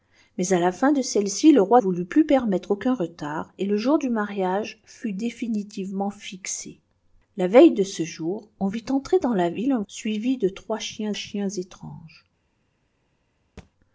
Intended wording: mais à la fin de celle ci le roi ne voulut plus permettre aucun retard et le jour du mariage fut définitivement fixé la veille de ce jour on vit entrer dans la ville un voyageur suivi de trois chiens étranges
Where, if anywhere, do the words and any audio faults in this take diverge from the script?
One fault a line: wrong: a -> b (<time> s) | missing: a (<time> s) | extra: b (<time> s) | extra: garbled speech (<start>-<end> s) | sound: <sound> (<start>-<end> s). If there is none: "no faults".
missing: ne (1.8 s)
missing: voyageur (9.8 s)
extra: chiens (11.1 s)
sound: thud (13.6-13.7 s)